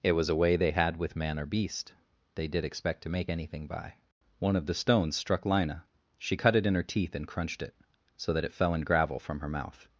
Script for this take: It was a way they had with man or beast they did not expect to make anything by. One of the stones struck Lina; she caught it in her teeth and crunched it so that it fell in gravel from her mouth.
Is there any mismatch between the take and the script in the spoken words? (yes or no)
yes